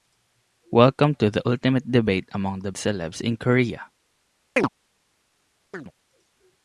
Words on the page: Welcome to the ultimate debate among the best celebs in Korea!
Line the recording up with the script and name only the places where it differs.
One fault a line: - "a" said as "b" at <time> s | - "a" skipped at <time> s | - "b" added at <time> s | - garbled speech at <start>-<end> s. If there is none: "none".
- "best" skipped at 2.7 s